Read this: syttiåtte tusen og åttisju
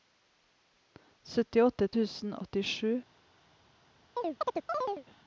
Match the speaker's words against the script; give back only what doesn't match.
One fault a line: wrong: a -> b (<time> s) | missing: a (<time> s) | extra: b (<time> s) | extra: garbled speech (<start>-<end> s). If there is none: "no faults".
no faults